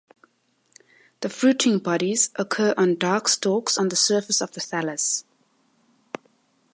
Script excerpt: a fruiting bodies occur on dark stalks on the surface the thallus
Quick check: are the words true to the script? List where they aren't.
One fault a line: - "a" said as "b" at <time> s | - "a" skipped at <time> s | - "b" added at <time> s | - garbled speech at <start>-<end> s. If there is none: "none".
- "a" said as "the" at 1.2 s
- "of" added at 4.4 s